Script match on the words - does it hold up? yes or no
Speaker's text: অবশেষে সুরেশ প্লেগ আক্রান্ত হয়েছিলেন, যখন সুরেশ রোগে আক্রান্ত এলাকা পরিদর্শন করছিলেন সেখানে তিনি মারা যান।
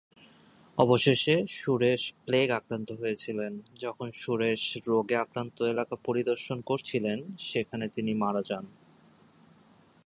yes